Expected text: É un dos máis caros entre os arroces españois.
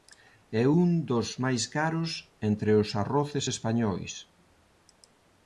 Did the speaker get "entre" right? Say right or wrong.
right